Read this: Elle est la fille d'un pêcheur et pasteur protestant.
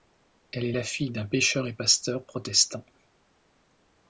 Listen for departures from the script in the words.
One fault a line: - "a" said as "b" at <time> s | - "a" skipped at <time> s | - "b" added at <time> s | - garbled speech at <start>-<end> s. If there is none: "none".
none